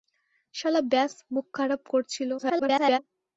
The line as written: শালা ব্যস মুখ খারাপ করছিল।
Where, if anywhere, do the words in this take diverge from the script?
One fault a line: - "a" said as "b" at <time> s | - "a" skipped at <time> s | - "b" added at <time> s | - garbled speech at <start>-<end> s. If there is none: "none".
- garbled speech at 2.4-3.0 s